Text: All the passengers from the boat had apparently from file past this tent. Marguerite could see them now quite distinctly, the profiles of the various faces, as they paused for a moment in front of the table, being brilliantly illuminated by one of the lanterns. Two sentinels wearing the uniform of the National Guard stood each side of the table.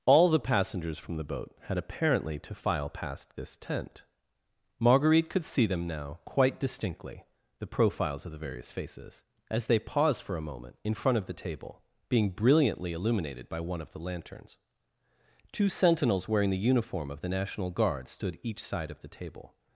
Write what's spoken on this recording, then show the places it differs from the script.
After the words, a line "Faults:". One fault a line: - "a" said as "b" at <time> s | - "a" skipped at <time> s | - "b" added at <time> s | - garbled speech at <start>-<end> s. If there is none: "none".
All the passengers from the boat had apparently to file past this tent. Marguerite could see them now quite distinctly, the profiles of the various faces, as they paused for a moment in front of the table, being brilliantly illuminated by one of the lanterns. Two sentinels wearing the uniform of the National Guard stood each side of the table.
Faults:
- "from" said as "to" at 2.4 s